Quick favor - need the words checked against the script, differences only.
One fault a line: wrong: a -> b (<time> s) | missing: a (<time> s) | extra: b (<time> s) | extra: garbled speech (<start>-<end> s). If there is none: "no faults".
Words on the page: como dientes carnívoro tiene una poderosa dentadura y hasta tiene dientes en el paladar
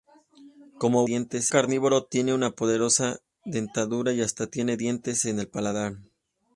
no faults